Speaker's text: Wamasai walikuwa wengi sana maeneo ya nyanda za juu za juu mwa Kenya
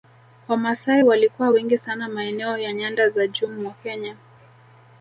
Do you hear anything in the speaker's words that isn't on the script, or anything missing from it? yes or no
yes